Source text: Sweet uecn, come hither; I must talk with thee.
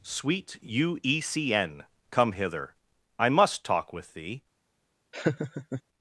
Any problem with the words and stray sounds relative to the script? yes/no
yes